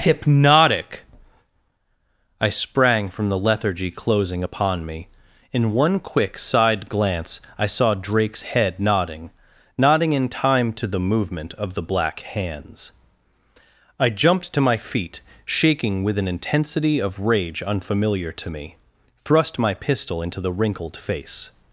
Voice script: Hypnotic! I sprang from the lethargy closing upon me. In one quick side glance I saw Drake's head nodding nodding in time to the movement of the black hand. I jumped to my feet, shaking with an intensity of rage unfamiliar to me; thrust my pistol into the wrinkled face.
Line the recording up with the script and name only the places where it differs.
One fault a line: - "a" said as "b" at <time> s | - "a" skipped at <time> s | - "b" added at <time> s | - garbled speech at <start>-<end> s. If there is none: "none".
- "hand" said as "hands" at 12.2 s